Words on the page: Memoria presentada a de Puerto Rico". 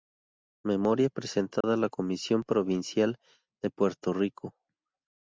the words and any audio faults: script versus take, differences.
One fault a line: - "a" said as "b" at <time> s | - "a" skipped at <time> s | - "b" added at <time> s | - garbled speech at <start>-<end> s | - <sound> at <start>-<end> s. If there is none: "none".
- dropout at 1.6-1.6 s
- "la Comisión Provincial" added at 1.8 s